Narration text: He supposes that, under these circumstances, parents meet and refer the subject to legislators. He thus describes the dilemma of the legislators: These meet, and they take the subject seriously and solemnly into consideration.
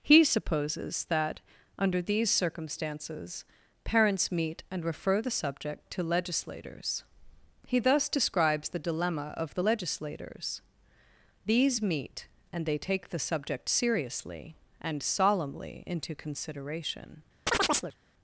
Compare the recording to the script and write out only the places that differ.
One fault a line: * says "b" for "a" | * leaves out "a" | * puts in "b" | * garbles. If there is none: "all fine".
all fine